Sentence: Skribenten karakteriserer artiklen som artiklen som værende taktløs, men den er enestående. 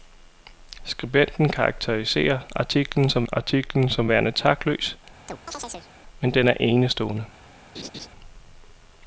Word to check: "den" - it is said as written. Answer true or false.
true